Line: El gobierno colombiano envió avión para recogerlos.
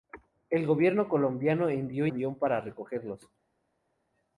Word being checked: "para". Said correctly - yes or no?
yes